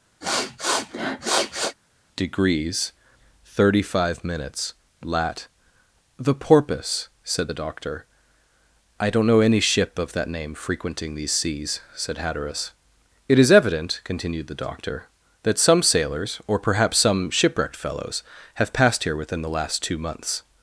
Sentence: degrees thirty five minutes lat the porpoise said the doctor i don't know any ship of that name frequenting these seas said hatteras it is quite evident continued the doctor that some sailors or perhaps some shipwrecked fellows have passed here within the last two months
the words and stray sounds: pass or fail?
fail